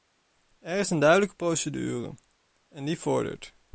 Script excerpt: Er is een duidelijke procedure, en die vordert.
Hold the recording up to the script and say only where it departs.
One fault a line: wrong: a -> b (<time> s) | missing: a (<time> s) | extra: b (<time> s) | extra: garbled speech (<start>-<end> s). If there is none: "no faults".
no faults